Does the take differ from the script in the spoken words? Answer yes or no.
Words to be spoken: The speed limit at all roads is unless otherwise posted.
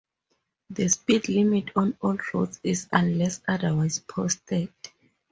yes